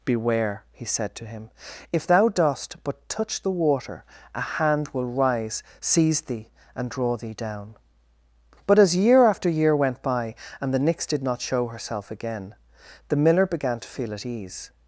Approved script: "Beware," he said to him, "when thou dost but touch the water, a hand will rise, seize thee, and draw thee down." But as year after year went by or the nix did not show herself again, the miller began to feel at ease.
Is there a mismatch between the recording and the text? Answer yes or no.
yes